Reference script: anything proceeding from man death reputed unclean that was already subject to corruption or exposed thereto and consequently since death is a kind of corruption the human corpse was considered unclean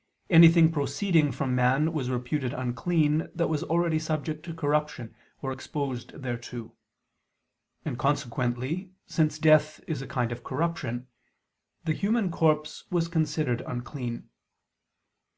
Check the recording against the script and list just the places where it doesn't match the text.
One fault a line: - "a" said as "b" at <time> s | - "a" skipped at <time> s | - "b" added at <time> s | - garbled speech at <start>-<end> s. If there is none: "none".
- "death" said as "was" at 1.9 s